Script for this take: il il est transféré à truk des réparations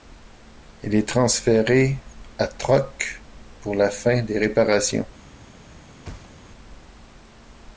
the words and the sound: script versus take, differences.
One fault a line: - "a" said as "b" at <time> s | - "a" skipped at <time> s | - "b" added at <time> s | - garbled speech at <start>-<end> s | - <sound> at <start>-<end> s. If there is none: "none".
- "il" skipped at 0.9 s
- "pour la fin" added at 3.6 s
- thud at 6.0-6.5 s